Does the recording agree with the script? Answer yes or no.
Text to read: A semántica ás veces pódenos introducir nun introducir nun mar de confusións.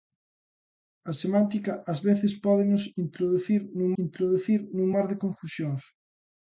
yes